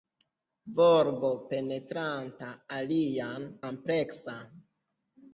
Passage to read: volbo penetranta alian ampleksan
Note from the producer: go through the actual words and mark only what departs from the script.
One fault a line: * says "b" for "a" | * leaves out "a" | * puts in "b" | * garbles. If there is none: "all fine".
all fine